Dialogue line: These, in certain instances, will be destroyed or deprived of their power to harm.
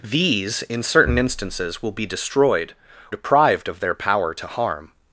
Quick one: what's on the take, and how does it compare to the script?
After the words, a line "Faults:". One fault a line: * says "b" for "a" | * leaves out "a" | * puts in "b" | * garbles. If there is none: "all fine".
These, in certain instances, will be destroyed deprived of their power to harm.
Faults:
* leaves out "or"